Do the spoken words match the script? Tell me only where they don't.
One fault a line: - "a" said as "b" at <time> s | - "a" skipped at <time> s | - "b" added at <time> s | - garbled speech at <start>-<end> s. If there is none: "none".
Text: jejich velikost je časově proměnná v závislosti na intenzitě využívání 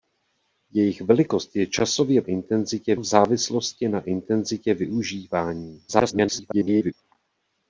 - "proměnná" said as "intenzitě" at 2.2 s
- garbled speech at 5.9-6.9 s